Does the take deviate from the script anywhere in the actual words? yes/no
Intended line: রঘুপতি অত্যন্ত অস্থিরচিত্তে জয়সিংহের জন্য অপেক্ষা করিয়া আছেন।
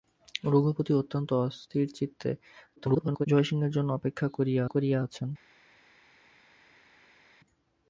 yes